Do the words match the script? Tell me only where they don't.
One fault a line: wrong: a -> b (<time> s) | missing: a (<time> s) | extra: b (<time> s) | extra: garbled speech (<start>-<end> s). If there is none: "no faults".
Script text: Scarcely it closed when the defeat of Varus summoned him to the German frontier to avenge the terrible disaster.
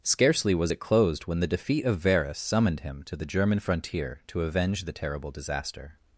extra: was (0.6 s)